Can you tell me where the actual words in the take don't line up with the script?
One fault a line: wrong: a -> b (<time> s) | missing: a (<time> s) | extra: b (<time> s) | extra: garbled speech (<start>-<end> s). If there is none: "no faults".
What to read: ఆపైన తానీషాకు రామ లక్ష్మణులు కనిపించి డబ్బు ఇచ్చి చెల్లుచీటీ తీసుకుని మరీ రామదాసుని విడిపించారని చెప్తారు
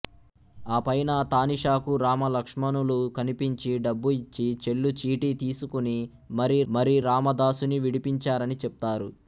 extra: మరీ (6.7 s)